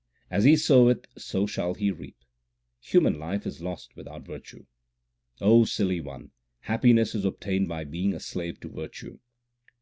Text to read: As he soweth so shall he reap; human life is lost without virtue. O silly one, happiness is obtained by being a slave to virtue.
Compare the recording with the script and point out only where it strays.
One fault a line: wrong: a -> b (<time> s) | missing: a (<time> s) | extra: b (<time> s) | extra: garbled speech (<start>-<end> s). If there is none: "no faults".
no faults